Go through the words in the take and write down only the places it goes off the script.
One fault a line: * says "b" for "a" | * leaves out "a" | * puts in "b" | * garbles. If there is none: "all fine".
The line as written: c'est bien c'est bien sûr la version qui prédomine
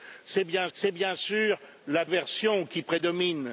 all fine